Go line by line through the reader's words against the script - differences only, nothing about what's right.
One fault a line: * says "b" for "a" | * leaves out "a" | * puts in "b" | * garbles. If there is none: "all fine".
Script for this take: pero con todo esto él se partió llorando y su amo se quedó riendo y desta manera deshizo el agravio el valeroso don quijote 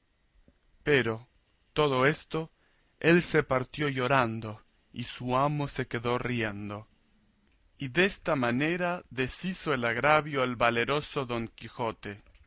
* leaves out "con"